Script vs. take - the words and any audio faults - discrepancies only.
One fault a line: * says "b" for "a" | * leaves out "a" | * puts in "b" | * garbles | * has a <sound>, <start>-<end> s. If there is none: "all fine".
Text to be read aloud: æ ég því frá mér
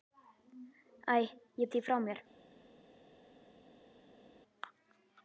all fine